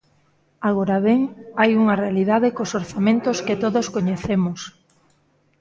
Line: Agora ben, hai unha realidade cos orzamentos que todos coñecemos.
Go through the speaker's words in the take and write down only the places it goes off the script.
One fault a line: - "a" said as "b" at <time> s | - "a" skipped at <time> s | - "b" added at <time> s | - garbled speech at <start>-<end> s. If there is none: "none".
none